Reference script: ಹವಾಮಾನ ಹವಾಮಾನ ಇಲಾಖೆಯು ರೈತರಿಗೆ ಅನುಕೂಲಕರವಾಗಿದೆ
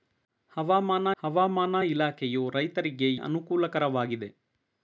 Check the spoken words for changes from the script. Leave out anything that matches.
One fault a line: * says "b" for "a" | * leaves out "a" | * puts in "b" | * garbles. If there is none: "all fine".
all fine